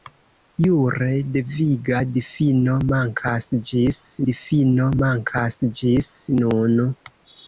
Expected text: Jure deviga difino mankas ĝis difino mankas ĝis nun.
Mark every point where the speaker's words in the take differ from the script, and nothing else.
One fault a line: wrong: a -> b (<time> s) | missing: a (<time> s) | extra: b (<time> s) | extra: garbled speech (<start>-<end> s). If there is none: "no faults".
no faults